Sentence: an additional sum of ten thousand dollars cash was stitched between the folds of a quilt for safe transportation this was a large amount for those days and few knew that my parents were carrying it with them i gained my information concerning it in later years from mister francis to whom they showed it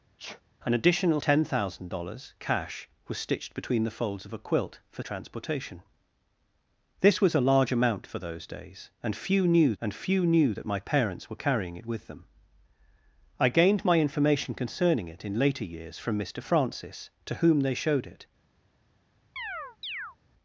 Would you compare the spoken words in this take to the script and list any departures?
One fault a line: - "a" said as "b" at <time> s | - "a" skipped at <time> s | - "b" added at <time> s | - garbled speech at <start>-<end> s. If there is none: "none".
- "sum of" skipped at 1.2 s
- "safe" skipped at 5.0 s
- "and few knew" added at 9.8 s